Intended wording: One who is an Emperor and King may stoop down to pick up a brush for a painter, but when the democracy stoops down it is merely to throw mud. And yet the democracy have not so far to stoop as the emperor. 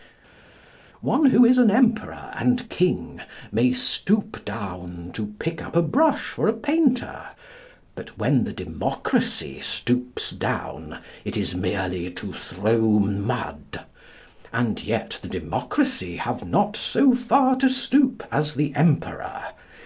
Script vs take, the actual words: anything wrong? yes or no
no